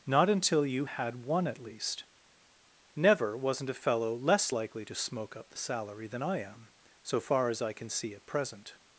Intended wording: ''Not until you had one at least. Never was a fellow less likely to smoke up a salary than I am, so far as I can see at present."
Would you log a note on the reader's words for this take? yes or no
yes